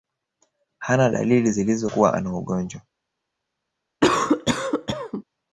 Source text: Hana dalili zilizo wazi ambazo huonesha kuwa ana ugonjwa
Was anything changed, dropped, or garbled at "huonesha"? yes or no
yes